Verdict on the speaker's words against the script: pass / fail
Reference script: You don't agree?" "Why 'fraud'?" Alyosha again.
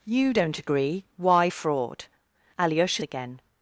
pass